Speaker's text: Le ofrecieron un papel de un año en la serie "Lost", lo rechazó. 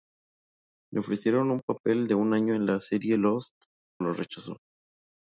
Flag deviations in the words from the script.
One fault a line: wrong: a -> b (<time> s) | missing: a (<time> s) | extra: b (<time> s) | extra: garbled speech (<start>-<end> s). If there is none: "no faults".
no faults